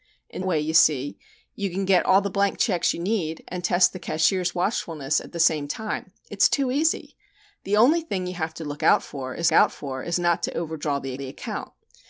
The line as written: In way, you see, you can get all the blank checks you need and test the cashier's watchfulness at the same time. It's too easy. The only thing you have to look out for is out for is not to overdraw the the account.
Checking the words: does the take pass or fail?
pass